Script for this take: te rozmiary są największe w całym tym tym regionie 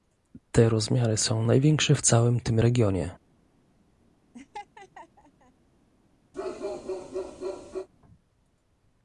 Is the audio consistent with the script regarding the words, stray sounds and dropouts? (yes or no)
no